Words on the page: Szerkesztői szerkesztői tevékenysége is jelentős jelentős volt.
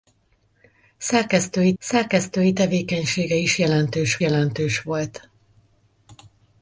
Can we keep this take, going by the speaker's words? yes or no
yes